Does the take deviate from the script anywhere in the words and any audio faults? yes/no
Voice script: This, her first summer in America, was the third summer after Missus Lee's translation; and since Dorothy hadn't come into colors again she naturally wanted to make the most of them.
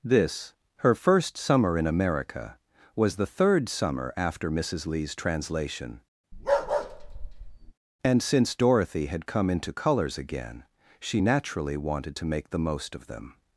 yes